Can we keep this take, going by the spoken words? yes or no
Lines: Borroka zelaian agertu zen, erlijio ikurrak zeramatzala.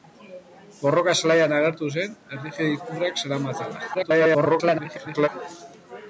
no